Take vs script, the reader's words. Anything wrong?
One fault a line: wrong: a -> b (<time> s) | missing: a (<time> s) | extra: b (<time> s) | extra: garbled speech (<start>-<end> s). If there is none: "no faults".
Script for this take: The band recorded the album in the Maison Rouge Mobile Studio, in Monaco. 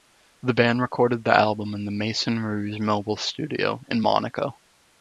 no faults